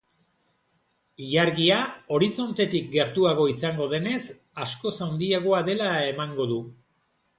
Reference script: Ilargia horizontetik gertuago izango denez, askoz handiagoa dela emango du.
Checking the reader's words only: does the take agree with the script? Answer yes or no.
yes